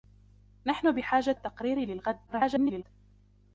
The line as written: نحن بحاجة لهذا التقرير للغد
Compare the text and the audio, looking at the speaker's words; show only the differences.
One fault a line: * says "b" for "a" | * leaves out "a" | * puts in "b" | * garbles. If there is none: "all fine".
* leaves out "لهذا"
* garbles